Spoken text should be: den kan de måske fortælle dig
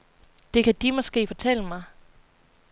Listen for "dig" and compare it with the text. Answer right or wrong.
wrong